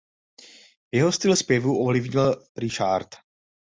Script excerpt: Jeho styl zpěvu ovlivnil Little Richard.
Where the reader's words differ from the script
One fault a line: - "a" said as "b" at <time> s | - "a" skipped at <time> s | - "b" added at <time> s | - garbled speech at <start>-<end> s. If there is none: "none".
- "Little" skipped at 2.5 s